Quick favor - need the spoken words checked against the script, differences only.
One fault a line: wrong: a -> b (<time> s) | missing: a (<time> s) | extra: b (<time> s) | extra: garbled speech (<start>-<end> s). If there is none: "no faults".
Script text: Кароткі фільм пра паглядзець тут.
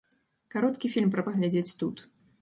no faults